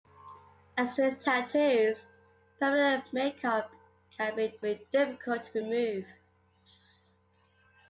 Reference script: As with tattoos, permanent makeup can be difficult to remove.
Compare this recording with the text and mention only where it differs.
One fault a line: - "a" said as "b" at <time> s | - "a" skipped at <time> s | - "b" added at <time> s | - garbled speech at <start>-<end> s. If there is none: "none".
- "be" added at 4.6 s